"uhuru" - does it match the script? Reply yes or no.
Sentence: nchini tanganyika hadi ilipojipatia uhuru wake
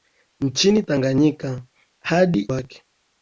no